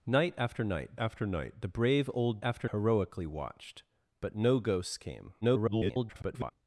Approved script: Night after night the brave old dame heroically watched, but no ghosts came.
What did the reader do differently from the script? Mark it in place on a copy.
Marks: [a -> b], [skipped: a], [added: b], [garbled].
Night after night [added: after night] the brave old [dame -> after] heroically watched, but no ghosts came. [garbled]